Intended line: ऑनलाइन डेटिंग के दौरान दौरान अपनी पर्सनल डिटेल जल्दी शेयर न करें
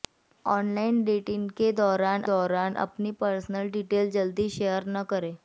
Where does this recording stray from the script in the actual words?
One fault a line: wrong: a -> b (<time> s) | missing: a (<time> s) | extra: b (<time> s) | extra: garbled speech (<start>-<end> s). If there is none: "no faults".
no faults